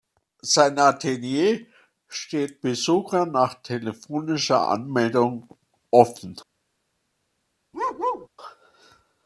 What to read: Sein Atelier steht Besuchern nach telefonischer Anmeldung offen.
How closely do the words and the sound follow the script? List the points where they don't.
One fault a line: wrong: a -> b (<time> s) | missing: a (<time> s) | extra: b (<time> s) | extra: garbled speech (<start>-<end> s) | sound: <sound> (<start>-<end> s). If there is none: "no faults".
sound: bark (7.7-8.3 s)